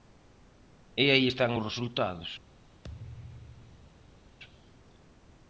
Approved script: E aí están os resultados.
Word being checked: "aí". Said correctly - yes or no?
yes